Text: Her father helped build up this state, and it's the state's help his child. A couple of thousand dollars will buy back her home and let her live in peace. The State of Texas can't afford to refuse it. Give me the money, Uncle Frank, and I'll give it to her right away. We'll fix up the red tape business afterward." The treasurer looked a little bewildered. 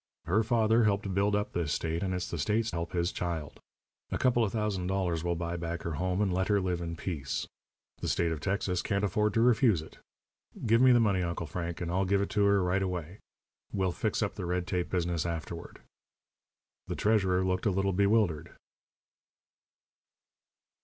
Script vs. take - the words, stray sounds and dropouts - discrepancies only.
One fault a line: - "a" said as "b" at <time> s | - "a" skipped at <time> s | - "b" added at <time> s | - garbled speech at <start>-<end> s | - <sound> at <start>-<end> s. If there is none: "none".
none